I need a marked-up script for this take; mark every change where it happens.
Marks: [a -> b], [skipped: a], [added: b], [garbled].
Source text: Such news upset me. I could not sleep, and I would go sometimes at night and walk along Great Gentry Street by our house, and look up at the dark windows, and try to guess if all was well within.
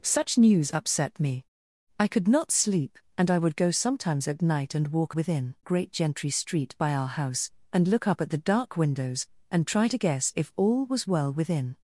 Such news upset me. I could not sleep, and I would go sometimes at night and walk [along -> within] Great Gentry Street by our house, and look up at the dark windows, and try to guess if all was well within.